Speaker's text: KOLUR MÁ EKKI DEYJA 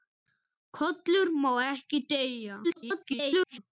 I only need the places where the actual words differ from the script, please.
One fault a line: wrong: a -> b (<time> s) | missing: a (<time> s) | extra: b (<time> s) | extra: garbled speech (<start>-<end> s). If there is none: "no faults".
extra: garbled speech (2.6-3.6 s)